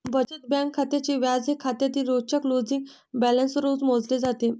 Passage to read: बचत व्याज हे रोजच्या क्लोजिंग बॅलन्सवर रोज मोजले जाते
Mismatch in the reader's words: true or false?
true